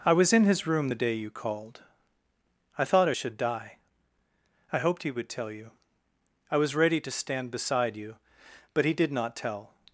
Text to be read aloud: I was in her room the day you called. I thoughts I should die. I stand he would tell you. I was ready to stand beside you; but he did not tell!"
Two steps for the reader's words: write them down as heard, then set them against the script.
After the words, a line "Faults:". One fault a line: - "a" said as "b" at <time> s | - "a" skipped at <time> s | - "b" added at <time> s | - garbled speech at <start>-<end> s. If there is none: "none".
I was in his room the day you called. I thought I should die. I hoped he would tell you. I was ready to stand beside you; but he did not tell!"
Faults:
- "her" said as "his" at 0.5 s
- "thoughts" said as "thought" at 2.8 s
- "stand" said as "hoped" at 4.8 s